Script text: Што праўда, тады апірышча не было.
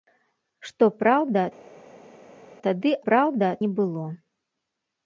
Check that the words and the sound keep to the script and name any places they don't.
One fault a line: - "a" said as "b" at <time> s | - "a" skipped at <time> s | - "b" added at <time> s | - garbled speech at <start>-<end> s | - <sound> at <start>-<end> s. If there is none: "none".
- "апірышча" said as "праўда" at 3.1 s